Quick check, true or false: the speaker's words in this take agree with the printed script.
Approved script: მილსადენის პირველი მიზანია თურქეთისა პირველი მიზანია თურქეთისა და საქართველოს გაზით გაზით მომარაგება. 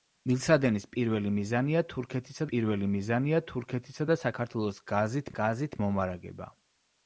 true